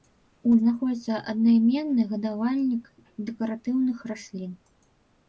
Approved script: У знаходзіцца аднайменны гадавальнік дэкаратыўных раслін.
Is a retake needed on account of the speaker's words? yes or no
no